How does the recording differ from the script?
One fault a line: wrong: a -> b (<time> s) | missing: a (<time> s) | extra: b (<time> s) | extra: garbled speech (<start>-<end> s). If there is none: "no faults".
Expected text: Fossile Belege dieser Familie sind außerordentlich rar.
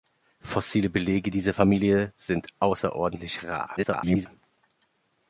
extra: garbled speech (3.8-4.3 s)